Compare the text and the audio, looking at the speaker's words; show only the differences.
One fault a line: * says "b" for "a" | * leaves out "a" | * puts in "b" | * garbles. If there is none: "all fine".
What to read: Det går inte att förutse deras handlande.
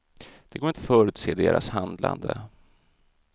* leaves out "inte"